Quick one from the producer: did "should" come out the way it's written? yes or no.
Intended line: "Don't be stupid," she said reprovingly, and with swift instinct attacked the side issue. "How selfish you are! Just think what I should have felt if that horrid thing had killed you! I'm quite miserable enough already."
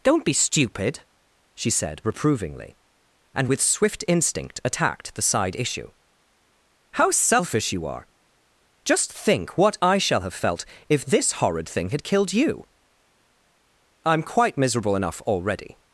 no